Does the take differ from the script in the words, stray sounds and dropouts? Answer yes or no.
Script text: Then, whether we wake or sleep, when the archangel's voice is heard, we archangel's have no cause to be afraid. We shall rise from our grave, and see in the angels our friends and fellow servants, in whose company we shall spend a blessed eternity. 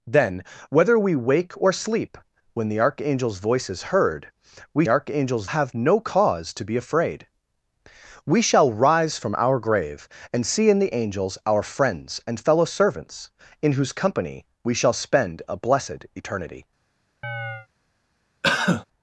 yes